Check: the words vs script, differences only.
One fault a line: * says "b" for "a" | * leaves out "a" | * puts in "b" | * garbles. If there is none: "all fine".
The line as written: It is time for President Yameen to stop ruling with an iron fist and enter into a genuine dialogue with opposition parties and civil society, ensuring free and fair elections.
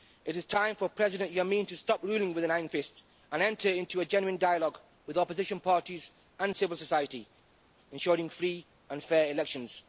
all fine